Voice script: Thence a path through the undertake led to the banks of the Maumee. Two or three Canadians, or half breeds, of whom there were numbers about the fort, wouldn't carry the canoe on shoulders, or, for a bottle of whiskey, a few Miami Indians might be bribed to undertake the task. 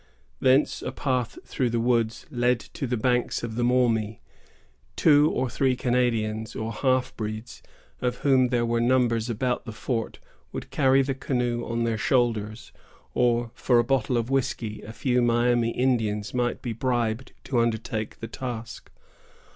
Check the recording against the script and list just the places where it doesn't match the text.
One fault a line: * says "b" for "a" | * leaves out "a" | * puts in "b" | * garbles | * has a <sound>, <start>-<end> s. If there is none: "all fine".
* says "woods" for "undertake"
* says "would" for "wouldn't"
* puts in "their"